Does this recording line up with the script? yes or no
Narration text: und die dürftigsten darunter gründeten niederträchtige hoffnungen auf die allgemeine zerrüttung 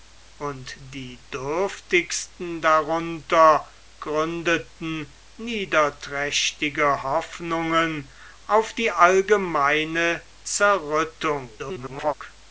no